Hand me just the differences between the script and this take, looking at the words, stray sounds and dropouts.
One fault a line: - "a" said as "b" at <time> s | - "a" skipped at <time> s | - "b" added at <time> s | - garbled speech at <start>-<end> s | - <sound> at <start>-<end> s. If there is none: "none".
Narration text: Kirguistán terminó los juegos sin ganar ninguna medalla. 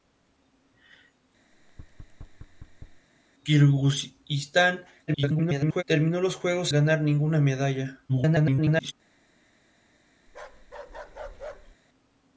- thud at 1.5-3.1 s
- garbled speech at 5.1-5.8 s
- "sin" skipped at 6.7 s
- garbled speech at 8.1-8.9 s
- bark at 10.3-11.8 s